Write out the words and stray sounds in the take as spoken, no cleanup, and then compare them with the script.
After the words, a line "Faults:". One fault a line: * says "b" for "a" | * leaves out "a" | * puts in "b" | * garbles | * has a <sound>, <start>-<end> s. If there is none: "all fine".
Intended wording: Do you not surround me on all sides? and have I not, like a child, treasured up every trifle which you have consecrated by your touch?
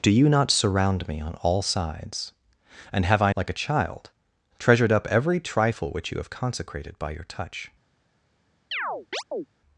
Do you not surround me on all sides? and have I like a child, treasured up every trifle which you have consecrated by your touch?
Faults:
* leaves out "not"
* has a chirp, 8.7-9.5 s